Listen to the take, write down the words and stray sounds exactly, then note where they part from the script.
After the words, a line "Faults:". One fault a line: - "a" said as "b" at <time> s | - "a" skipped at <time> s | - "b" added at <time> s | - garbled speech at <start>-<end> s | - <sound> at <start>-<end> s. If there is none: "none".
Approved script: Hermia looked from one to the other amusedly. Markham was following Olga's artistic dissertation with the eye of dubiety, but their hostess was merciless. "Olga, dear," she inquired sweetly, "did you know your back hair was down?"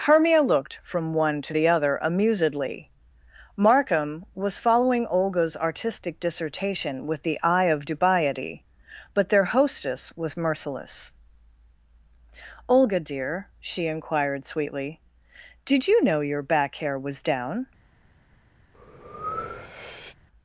Hermia looked from one to the other amusedly. Markham was following Olga's artistic dissertation with the eye of dubiety, but their hostess was merciless. "Olga, dear," she inquired sweetly, "did you know your back hair was down?"
Faults:
- breath at 18.7-20.2 s